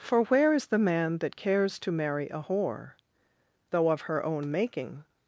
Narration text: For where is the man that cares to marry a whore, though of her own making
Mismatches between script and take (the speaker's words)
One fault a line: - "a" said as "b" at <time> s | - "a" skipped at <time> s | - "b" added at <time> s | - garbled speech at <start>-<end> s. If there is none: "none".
none